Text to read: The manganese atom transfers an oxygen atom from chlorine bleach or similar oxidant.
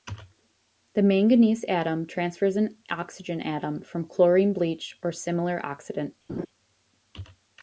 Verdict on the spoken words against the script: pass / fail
pass